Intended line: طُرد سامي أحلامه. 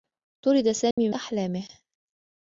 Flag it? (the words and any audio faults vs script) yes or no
yes